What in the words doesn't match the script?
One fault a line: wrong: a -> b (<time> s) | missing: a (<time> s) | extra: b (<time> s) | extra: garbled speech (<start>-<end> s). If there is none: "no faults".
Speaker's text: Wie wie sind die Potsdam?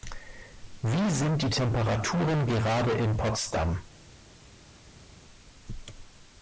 missing: wie (1.1 s)
extra: Temperaturen gerade in (1.5 s)